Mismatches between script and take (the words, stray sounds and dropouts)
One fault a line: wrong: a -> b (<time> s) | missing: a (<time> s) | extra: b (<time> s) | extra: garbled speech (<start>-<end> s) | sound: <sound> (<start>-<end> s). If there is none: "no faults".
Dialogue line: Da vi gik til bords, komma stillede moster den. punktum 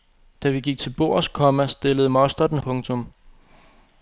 no faults